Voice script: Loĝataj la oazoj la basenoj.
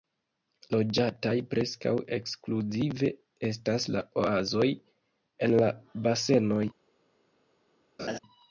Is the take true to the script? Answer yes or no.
no